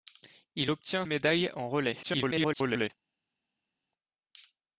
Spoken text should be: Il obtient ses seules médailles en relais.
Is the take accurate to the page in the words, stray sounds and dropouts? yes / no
no